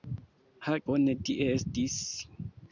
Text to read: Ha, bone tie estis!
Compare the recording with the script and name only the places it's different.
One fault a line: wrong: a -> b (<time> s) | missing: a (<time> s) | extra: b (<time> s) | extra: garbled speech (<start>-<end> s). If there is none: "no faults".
no faults